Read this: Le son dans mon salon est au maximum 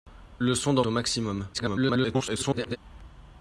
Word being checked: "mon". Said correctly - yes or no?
no